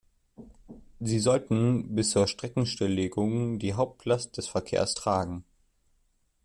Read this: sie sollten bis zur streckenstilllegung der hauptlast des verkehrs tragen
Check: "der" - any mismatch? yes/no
yes